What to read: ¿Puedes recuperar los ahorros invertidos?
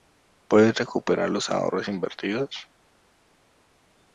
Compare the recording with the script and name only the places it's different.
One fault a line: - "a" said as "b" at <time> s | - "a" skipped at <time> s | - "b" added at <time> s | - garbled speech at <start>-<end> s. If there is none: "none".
none